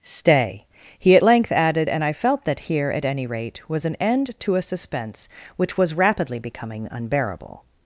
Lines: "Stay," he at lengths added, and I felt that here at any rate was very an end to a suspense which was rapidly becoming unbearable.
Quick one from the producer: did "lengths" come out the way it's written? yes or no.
no